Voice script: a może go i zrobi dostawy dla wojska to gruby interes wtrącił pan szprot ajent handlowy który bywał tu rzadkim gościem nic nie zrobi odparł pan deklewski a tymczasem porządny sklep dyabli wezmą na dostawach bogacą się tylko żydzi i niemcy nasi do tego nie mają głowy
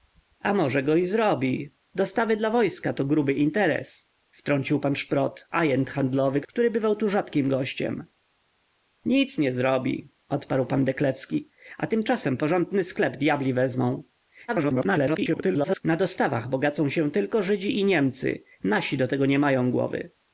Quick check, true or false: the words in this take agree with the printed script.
false